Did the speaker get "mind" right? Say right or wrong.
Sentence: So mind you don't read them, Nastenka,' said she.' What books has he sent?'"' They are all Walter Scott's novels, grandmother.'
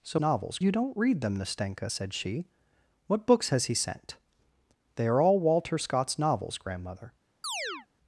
wrong